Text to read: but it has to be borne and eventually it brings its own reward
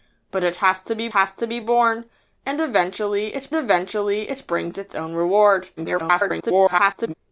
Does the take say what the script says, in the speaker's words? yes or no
no